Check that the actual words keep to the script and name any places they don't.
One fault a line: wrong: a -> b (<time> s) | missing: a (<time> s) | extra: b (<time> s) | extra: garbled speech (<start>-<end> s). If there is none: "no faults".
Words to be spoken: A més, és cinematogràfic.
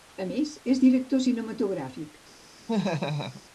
extra: director (0.8 s)